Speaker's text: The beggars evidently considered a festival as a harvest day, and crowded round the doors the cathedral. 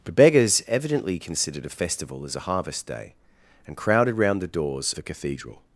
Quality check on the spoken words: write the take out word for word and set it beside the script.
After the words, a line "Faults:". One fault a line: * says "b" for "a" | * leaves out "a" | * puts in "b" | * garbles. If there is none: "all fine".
The beggars evidently considered a festival as a harvest day, and crowded round the doors the cathedral.
Faults:
all fine